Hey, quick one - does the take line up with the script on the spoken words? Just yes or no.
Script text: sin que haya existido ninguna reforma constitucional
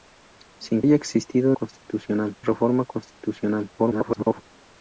no